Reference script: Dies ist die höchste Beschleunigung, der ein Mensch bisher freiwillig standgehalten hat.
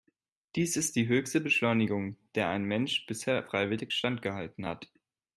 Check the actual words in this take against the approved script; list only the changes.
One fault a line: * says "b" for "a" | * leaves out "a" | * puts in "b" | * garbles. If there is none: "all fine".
all fine